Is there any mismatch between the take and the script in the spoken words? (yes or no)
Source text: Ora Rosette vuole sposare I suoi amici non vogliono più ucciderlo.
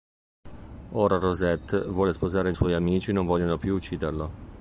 no